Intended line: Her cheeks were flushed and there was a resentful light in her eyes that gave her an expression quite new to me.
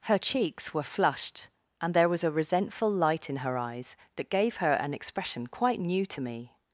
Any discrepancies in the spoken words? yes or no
no